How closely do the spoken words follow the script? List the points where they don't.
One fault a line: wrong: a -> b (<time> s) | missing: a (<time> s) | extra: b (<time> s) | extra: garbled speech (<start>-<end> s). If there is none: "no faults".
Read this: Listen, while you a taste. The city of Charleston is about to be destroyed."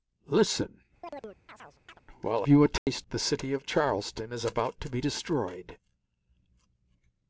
no faults